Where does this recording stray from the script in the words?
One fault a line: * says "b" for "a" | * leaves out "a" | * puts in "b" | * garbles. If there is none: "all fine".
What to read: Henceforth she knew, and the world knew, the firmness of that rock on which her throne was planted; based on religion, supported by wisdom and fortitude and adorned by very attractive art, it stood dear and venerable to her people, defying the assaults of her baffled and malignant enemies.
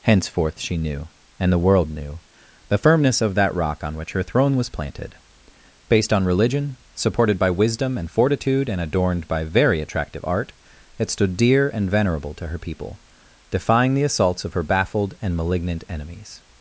all fine